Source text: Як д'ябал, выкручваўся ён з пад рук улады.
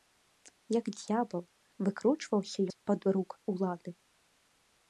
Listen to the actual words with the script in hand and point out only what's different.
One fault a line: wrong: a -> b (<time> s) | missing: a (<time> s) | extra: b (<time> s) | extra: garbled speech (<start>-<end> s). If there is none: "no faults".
missing: ён (2.6 s)